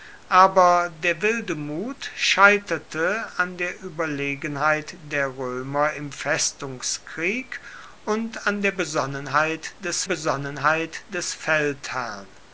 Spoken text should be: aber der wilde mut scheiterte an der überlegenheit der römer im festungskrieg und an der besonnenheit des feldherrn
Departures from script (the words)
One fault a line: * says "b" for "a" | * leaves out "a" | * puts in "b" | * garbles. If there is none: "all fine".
* puts in "besonnenheit des"